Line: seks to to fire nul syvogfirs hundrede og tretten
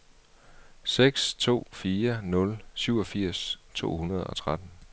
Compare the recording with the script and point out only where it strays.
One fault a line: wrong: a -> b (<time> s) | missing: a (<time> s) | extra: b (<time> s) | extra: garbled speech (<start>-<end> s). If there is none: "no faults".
missing: to (1.6 s)
extra: to (3.7 s)